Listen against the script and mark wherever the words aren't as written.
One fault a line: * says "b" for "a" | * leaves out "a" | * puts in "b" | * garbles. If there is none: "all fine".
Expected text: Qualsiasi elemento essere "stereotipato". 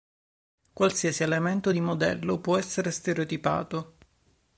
* puts in "di modello può"